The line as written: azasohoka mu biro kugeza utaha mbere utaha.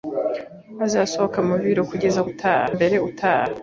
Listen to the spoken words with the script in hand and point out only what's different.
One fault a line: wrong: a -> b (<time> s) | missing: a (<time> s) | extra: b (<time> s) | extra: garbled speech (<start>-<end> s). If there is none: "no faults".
no faults